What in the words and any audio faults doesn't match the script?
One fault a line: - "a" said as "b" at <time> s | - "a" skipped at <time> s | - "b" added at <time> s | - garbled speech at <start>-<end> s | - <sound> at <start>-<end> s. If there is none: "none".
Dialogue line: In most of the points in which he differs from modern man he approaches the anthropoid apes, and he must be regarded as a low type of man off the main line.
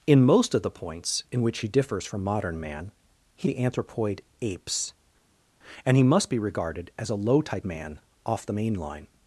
- "approaches" skipped at 3.5 s
- "of" skipped at 7.7 s